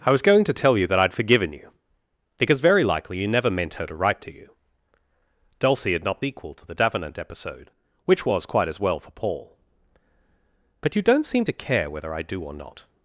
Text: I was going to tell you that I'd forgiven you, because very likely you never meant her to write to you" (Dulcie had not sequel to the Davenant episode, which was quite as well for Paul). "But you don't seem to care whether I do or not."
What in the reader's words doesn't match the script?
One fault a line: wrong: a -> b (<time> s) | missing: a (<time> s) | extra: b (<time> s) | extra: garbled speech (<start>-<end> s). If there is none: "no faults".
no faults